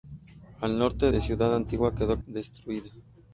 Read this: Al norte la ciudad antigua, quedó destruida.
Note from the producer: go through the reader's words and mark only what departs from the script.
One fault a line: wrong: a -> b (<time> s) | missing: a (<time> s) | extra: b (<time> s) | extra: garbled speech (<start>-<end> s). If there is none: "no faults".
no faults